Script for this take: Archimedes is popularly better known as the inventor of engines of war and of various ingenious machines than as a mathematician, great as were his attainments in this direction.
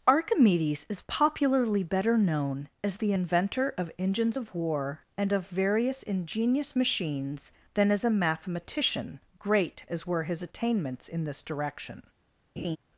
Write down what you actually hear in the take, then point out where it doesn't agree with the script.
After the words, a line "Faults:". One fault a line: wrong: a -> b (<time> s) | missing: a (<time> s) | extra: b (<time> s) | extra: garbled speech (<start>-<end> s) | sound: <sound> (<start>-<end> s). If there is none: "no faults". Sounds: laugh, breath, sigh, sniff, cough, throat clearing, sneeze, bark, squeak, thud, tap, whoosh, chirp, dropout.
Archimedes is popularly better known as the inventor of engines of war and of various ingenious machines than as a mathematician, great as were his attainments in this direction.
Faults:
sound: laugh (12.6-12.8 s)